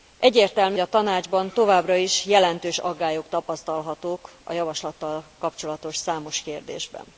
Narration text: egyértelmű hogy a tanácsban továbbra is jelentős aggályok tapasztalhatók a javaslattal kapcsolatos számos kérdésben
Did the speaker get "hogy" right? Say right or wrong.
wrong